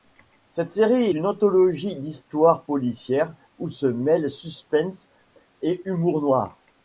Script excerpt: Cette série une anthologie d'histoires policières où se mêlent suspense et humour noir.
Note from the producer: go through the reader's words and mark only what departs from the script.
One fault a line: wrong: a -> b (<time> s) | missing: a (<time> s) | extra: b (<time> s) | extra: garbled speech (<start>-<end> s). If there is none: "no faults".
no faults